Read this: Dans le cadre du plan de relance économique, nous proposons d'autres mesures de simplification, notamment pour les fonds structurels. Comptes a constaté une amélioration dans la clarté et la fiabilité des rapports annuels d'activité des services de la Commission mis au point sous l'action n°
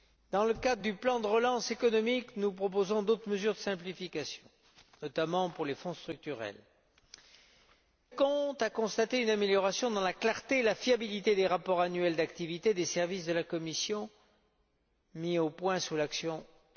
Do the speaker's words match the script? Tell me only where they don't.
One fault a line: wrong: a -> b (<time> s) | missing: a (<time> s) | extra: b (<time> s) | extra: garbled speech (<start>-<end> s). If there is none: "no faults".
no faults